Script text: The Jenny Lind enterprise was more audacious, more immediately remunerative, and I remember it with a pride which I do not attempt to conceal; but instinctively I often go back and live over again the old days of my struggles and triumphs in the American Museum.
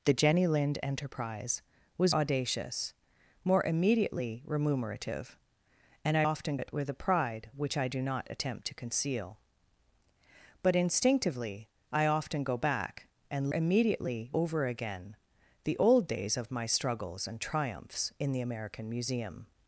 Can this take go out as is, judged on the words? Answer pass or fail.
fail